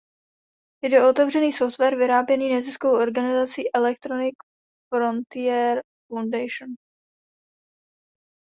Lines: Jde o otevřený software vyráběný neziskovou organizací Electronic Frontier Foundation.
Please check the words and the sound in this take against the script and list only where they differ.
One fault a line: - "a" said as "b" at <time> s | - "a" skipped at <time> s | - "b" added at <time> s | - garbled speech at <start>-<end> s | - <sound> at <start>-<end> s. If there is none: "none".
none